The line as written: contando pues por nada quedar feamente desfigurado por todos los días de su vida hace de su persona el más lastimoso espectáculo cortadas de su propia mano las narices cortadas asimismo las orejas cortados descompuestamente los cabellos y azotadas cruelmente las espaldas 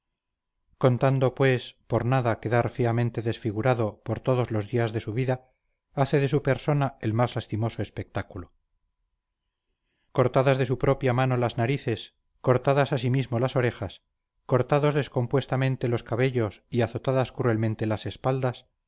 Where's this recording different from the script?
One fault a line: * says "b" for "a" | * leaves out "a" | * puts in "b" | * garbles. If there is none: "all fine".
all fine